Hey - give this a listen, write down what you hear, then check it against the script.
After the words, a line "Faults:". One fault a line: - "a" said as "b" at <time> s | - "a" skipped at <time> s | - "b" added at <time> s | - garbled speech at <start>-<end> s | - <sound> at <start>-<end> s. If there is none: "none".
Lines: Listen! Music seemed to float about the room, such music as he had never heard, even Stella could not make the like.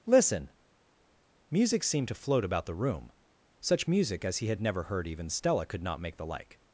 Listen! Music seemed to float about the room, such music as he had never heard, even Stella could not make the like.
Faults:
none